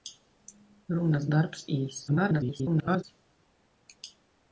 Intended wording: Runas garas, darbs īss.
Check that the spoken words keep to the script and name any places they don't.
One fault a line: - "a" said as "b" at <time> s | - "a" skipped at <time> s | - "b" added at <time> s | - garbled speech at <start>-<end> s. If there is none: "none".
- "garas" skipped at 1.3 s
- garbled speech at 2.1-3.0 s